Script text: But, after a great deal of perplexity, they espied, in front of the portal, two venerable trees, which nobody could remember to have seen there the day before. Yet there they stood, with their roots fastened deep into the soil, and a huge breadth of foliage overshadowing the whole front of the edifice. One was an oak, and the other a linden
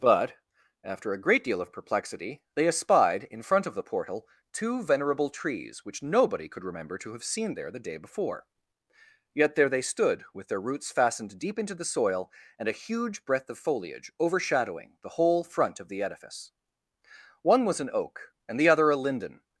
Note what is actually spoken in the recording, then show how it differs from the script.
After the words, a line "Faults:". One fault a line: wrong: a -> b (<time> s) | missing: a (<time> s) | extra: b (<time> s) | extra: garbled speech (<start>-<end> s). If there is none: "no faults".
But, after a great deal of perplexity, they espied, in front of the portal, two venerable trees, which nobody could remember to have seen there the day before. Yet there they stood, with their roots fastened deep into the soil, and a huge breadth of foliage overshadowing the whole front of the edifice. One was an oak, and the other a linden
Faults:
no faults